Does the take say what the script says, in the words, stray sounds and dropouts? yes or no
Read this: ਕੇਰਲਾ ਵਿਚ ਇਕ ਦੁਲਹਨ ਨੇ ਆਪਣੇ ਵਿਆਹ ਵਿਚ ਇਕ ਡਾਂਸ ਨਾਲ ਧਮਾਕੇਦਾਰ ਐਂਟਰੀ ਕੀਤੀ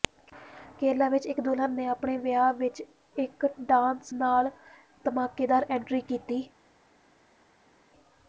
yes